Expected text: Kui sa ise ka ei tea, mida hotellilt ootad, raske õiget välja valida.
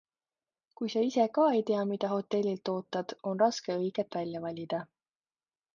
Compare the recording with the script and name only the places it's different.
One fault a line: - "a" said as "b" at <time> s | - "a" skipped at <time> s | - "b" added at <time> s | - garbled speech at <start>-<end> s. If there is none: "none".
- "on" added at 3.3 s